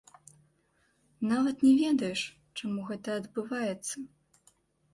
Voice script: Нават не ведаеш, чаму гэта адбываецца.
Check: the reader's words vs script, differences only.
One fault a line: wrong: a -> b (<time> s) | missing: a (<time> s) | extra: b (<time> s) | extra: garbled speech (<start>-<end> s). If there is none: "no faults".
no faults